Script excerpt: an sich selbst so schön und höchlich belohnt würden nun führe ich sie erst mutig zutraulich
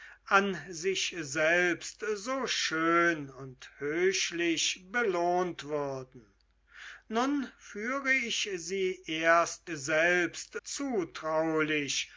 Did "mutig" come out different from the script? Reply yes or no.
yes